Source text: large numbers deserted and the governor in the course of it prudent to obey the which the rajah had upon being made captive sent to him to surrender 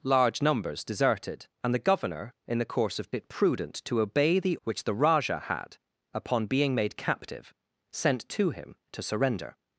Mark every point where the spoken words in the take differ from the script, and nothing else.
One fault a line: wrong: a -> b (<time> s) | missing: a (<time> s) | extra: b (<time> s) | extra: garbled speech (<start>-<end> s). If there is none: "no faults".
no faults